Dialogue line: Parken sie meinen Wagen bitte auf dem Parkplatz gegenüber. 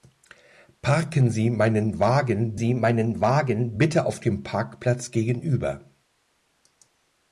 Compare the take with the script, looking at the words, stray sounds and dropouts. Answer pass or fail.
fail